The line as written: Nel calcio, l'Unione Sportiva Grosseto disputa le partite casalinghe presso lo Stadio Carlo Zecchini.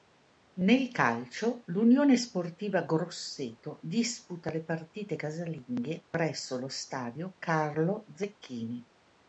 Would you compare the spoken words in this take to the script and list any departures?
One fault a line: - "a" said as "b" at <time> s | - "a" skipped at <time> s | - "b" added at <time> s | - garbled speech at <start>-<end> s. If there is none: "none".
none